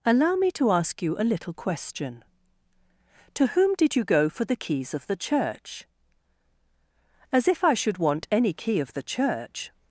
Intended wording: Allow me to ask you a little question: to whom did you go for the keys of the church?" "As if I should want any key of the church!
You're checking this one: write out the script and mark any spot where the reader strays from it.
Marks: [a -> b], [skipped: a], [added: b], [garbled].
Allow me to ask you a little question: to whom did you go for the keys of the church?" "As if I should want any key of the church!